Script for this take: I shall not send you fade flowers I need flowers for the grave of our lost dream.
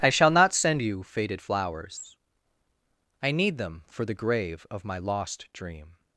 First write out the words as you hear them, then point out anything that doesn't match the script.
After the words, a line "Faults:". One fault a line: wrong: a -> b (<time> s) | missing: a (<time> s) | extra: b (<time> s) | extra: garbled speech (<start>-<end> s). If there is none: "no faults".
I shall not send you faded flowers I need them for the grave of my lost dream.
Faults:
wrong: fade -> faded (1.0 s)
wrong: flowers -> them (3.6 s)
wrong: our -> my (4.8 s)